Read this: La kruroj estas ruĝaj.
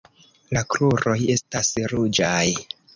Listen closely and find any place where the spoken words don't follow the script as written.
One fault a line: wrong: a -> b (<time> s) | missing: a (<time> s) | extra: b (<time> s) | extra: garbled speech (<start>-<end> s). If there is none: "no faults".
no faults